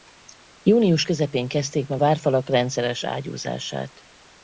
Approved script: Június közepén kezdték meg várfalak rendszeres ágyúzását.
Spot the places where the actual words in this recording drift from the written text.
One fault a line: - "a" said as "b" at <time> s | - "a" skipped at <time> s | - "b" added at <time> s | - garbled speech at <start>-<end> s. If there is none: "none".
none